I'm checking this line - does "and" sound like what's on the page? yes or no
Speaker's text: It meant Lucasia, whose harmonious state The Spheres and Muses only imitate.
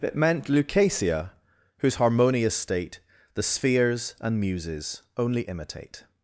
yes